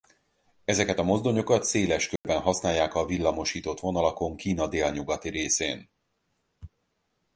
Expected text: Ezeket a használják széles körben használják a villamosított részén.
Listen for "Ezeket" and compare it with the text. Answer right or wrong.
right